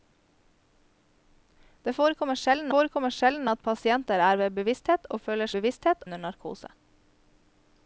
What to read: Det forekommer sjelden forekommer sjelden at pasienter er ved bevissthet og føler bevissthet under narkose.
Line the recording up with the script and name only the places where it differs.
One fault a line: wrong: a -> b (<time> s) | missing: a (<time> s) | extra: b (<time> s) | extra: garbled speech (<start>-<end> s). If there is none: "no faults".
no faults